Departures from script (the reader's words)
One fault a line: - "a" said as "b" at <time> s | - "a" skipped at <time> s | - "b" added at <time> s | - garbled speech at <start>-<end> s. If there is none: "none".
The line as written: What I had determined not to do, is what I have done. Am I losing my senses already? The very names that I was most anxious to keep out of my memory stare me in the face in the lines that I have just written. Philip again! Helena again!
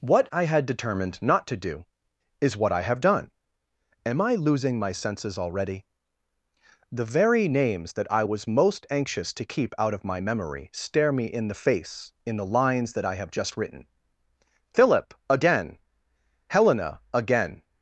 none